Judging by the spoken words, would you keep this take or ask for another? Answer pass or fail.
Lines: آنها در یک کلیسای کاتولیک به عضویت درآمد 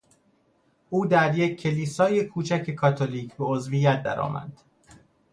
fail